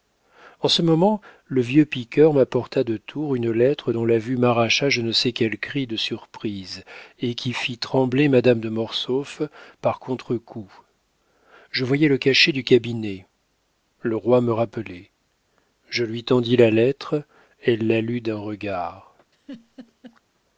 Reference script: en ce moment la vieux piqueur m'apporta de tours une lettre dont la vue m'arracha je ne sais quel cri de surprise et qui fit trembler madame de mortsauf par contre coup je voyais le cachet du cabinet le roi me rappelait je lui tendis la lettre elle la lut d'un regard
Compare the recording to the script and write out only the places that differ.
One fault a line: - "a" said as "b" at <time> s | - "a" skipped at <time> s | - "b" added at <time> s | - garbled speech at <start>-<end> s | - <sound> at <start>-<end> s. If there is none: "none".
- "la" said as "le" at 1.4 s
- laugh at 19.3-20.2 s